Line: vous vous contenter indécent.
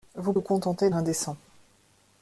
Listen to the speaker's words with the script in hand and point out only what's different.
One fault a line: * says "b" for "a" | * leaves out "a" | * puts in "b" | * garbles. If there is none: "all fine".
all fine